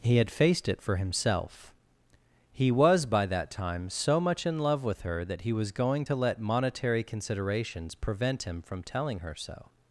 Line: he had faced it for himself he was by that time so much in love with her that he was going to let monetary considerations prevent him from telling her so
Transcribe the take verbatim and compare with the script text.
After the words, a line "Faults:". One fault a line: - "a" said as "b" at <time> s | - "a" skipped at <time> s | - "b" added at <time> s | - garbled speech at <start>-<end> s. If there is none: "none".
he had faced it for himself he was by that time so much in love with her that he was going to let monetary considerations prevent him from telling her so
Faults:
none